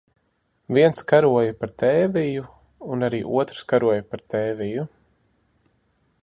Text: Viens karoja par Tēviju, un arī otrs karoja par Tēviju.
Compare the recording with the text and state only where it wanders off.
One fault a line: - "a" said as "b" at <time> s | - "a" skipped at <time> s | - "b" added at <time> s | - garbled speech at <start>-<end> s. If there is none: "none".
none